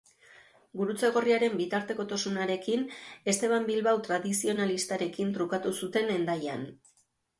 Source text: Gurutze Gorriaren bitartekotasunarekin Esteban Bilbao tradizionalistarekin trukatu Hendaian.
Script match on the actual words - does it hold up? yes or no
no